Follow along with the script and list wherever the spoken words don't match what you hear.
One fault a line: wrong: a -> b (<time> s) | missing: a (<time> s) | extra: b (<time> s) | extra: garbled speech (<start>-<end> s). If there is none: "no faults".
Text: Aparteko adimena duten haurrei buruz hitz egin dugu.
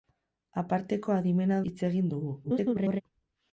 missing: duten haurrei buruz (1.6 s)
extra: garbled speech (2.4-3.0 s)